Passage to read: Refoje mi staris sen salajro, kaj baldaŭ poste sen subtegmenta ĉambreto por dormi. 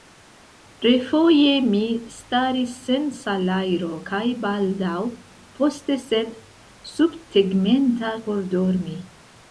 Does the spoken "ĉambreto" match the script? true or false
false